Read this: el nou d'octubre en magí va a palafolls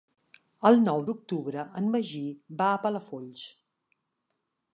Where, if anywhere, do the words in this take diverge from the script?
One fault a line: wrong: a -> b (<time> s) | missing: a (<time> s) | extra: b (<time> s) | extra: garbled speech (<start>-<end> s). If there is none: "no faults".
no faults